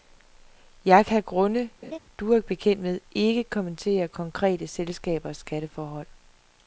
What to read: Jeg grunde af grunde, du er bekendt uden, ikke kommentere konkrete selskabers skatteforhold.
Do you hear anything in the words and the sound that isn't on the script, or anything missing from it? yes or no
yes